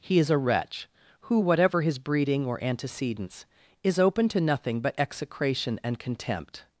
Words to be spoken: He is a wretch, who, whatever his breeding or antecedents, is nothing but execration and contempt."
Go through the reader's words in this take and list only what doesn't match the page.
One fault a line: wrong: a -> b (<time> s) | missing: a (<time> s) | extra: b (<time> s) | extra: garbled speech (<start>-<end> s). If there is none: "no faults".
extra: open to (4.0 s)